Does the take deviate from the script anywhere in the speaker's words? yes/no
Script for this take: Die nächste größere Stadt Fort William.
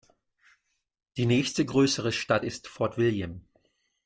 yes